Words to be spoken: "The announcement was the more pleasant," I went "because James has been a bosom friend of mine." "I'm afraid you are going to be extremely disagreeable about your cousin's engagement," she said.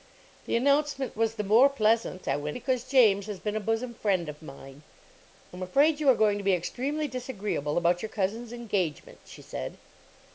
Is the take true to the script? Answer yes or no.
yes